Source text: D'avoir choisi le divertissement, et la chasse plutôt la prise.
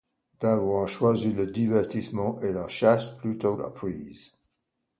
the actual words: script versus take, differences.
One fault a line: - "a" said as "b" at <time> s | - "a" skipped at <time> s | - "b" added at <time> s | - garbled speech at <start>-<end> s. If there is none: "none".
none